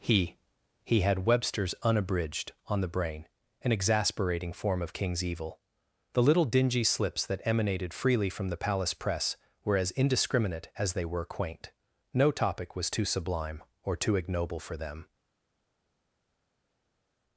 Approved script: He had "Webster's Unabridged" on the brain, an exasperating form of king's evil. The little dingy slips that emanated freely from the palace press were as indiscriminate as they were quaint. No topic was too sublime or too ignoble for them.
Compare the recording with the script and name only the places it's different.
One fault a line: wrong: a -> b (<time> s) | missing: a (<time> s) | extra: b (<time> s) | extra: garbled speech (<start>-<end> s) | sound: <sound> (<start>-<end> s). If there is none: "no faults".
extra: he (0.8 s)